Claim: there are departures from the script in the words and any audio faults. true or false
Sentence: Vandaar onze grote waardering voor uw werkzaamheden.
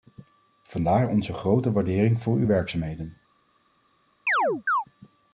true